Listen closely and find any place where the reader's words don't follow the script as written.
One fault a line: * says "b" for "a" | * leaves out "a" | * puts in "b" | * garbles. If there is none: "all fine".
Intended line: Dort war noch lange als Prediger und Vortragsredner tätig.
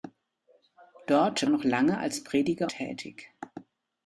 * leaves out "war"
* leaves out "und Vortragsredner"